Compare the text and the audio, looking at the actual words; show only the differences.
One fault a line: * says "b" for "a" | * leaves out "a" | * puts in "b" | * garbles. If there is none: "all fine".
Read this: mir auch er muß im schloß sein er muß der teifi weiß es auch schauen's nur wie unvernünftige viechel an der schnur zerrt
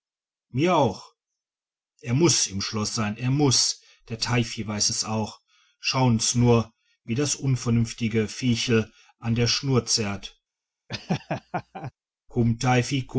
* puts in "das"